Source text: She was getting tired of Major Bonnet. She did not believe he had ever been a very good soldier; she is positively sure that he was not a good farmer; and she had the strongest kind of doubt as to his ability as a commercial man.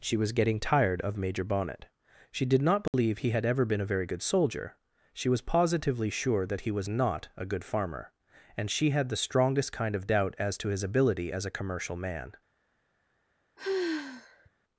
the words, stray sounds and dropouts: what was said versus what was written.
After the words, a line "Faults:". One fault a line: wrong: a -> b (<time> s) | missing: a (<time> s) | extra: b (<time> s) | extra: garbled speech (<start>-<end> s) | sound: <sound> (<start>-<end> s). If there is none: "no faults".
She was getting tired of Major Bonnet. She did not believe he had ever been a very good soldier; she was positively sure that he was not a good farmer; and she had the strongest kind of doubt as to his ability as a commercial man.
Faults:
sound: dropout (2.9-2.9 s)
wrong: is -> was (5.3 s)
sound: sigh (13.6-14.5 s)